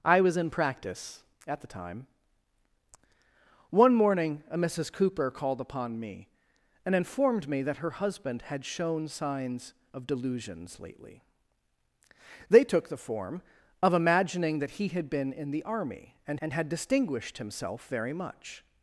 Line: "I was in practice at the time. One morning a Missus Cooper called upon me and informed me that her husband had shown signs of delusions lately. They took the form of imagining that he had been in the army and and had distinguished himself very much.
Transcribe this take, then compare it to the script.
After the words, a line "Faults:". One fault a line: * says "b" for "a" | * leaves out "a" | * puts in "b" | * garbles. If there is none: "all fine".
"I was in practice at the time. One morning a Missus Cooper called upon me and informed me that her husband had shown signs of delusions lately. They took the form of imagining that he had been in the army and and had distinguished himself very much.
Faults:
all fine